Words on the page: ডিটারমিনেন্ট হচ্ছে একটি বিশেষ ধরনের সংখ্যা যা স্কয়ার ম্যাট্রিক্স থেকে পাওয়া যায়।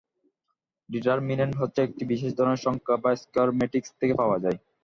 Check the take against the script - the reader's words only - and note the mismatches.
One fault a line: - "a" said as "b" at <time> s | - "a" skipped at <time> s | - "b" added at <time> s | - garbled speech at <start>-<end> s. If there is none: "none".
none